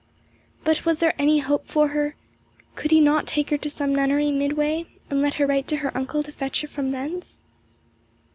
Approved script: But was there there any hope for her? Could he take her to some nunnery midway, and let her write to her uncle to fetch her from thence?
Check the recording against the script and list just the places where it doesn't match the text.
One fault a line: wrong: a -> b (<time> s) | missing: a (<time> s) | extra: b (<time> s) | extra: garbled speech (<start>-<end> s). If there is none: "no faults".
missing: there (1.1 s)
extra: not (3.0 s)